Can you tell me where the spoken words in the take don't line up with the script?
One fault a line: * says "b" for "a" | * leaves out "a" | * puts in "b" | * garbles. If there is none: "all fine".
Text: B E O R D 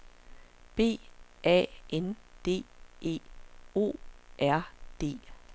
* puts in "A N D"